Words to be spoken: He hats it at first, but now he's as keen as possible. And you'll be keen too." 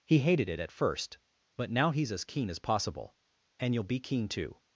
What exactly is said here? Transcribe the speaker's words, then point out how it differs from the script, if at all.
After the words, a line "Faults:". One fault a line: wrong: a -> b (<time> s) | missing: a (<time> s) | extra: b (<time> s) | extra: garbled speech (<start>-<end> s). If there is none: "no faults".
He hated it at first, but now he's as keen as possible. And you'll be keen too."
Faults:
wrong: hats -> hated (0.2 s)